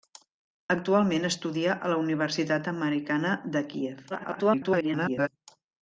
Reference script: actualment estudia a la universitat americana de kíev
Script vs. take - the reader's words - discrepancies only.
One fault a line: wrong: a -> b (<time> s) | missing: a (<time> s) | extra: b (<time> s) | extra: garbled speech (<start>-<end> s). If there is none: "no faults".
extra: garbled speech (4.1-5.3 s)